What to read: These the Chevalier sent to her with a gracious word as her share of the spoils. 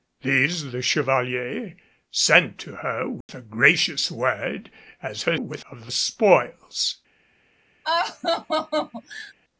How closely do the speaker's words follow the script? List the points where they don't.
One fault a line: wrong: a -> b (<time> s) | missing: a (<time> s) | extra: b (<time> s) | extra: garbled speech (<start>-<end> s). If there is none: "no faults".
wrong: share -> with (5.4 s)